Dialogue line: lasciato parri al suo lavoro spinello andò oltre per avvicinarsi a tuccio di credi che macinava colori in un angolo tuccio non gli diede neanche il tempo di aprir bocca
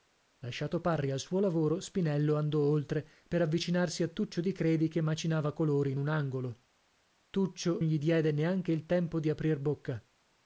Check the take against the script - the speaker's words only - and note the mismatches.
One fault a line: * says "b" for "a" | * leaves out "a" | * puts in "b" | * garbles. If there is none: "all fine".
* leaves out "non"